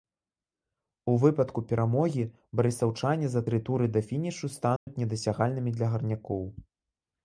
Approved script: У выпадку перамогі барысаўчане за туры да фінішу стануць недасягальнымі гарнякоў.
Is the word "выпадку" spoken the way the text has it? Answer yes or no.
yes